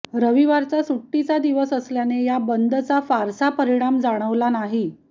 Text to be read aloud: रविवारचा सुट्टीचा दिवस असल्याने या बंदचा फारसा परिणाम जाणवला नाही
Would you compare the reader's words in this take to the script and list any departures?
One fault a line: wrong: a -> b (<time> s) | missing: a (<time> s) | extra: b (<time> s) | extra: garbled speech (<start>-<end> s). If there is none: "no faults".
no faults